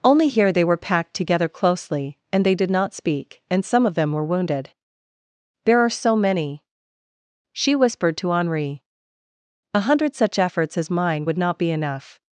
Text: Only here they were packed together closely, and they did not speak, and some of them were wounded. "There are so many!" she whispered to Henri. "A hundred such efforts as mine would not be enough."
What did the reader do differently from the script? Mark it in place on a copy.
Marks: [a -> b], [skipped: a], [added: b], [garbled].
Only here they were packed together closely, and they did not speak, and some of them were wounded. "There are so many!" she whispered to Henri. "A hundred such efforts as mine would not be enough."